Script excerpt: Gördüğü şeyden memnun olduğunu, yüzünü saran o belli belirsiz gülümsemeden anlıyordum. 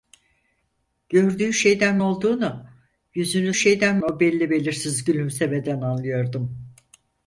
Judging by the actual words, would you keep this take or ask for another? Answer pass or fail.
fail